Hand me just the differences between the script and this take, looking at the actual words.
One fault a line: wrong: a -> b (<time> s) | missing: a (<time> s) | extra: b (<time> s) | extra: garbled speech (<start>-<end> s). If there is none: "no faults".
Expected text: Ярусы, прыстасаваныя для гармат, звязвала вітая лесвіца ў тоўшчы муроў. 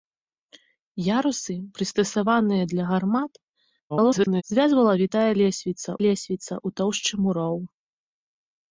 extra: garbled speech (3.9-4.4 s)
extra: лесвіца (6.1 s)